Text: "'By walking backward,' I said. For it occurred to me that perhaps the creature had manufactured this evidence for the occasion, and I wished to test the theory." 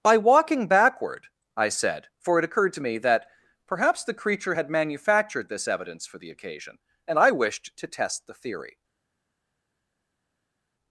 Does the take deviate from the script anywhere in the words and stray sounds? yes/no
no